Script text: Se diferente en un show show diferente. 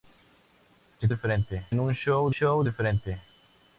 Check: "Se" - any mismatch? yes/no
no